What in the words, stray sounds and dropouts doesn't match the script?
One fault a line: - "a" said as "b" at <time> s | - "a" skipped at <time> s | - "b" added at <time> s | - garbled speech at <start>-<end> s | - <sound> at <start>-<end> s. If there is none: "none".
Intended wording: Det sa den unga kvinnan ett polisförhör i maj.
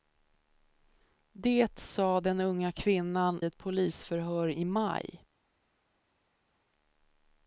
none